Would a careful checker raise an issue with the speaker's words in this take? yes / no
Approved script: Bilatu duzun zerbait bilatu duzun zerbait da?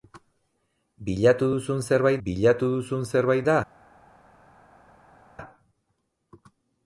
no